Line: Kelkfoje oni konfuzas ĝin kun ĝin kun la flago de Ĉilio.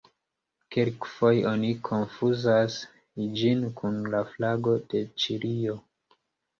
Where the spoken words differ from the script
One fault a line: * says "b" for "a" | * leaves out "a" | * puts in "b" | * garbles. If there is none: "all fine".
* leaves out "ĝin kun"